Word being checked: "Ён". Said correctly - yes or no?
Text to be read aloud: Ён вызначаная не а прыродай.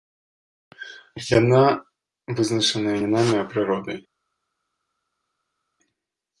no